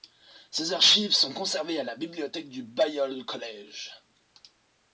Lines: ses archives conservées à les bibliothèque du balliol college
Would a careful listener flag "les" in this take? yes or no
yes